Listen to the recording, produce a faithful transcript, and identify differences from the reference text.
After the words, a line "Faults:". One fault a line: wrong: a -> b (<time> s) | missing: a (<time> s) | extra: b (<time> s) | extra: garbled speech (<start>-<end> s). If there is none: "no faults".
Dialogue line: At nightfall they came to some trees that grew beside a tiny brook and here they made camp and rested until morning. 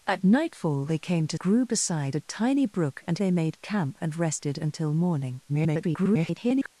At nightfall they came to grew beside a tiny brook and they made camp and rested until morning. [garbled]
Faults:
missing: some trees that (1.4 s)
missing: here (3.2 s)
extra: garbled speech (5.5-6.7 s)